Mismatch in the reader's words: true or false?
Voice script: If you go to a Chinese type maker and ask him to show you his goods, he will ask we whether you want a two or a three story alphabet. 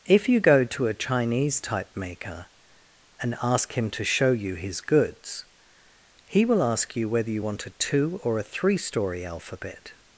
true